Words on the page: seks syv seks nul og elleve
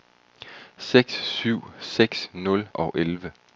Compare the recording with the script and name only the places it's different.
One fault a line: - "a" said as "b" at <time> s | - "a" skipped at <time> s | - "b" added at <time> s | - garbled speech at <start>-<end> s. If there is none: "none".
none